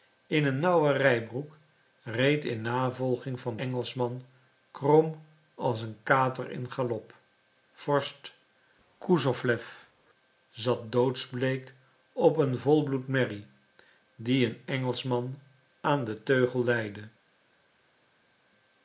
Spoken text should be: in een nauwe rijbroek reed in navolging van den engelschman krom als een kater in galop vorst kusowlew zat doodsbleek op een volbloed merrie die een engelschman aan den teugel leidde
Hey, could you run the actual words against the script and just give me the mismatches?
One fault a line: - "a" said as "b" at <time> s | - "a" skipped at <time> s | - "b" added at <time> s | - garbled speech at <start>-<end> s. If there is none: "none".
- "den" skipped at 3.6 s